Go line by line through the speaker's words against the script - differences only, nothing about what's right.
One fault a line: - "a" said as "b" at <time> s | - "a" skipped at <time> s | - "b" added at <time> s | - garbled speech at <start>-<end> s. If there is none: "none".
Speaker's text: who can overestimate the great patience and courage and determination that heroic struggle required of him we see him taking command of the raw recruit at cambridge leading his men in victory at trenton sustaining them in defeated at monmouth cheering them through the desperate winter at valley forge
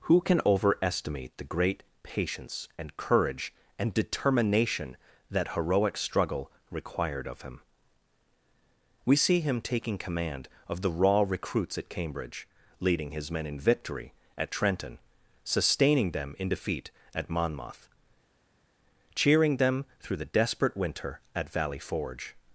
- "recruit" said as "recruits" at 11.3 s
- "defeated" said as "defeat" at 16.5 s